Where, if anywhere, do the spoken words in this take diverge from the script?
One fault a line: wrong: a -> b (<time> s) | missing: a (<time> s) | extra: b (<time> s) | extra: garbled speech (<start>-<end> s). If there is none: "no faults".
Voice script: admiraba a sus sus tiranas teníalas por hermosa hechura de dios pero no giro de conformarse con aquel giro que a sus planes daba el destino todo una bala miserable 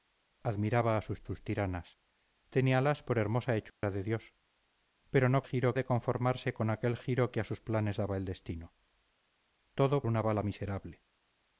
no faults